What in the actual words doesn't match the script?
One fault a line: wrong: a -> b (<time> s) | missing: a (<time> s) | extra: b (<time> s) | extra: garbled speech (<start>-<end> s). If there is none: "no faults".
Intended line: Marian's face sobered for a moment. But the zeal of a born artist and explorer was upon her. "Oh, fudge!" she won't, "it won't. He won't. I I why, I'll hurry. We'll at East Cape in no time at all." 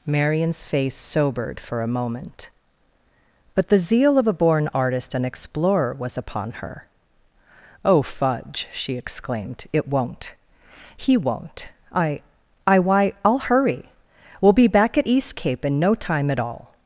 wrong: won't -> exclaimed (9.0 s)
extra: be back (14.5 s)